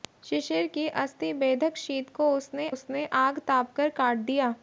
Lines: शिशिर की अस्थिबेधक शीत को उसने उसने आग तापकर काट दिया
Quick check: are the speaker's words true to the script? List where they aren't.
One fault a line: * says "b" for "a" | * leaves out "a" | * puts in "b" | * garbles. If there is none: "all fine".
all fine